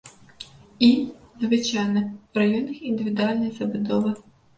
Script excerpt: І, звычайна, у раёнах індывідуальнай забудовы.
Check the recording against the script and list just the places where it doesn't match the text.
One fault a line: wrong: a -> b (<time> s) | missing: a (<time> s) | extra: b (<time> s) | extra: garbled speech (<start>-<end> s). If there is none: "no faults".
no faults